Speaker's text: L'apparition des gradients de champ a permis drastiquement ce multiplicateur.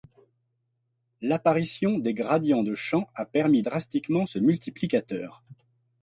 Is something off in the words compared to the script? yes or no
no